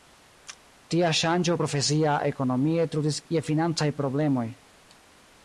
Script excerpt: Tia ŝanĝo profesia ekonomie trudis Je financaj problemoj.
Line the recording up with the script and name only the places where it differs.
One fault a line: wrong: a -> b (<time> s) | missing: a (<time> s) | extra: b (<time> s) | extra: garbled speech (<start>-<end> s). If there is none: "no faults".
no faults